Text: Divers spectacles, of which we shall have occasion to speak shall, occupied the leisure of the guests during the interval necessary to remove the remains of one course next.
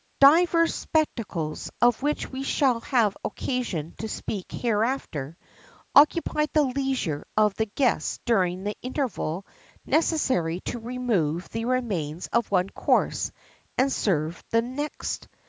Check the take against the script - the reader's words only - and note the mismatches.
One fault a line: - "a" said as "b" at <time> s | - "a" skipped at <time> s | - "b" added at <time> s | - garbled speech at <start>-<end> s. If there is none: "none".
- "shall" said as "hereafter" at 4.5 s
- "and serve the" added at 13.8 s